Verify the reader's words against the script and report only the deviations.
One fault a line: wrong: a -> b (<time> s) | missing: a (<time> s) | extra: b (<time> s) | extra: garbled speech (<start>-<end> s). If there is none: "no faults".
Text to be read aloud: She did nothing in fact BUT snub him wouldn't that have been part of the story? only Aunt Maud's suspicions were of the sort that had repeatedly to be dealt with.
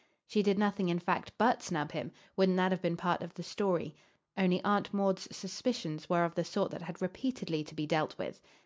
no faults